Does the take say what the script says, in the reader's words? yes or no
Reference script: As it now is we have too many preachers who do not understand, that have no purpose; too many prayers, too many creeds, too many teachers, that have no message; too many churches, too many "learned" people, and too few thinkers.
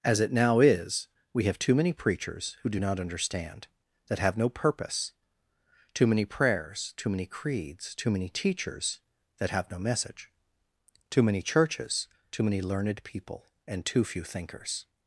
yes